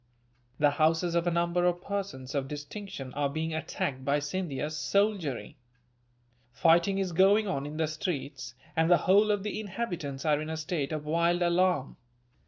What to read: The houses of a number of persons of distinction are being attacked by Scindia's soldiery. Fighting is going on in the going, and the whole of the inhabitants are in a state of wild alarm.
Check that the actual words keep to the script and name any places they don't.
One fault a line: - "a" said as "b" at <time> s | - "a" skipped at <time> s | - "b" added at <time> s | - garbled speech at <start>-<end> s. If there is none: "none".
- "going" said as "streets" at 7.8 s